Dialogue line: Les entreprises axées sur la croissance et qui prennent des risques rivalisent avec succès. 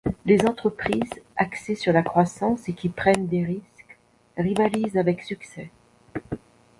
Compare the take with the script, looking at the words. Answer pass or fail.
pass